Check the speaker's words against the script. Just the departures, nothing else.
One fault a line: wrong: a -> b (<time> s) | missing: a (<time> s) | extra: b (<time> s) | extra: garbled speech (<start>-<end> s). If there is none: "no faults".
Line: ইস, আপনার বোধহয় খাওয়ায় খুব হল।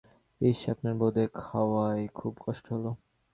extra: কষ্ট (2.5 s)